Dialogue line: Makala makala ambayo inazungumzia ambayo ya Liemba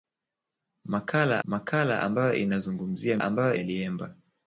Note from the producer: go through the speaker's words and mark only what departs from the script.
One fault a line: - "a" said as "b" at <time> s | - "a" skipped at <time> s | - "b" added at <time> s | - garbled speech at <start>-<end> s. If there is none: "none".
none